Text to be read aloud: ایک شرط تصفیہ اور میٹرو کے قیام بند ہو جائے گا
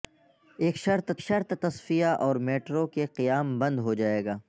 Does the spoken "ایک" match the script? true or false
true